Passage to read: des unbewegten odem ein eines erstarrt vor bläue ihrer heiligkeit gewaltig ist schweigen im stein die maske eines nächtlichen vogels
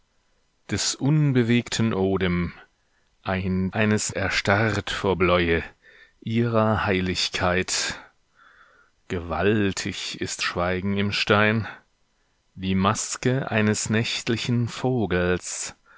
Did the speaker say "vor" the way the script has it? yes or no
yes